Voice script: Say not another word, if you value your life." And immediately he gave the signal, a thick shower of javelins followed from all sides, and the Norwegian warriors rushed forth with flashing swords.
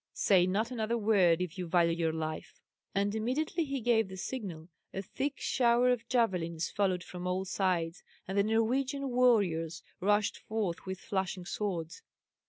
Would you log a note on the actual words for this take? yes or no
no